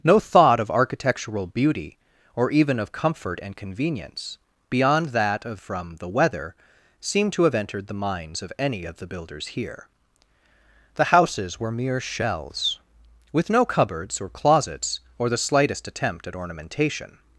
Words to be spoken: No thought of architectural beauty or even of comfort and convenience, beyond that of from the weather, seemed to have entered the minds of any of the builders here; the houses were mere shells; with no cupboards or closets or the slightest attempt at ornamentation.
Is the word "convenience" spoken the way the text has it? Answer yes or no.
yes